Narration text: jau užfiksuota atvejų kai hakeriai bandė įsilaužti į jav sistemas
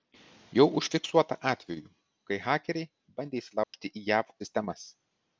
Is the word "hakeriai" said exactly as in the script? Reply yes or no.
yes